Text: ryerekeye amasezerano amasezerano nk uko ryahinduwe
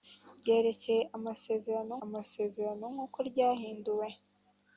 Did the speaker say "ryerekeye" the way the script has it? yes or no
yes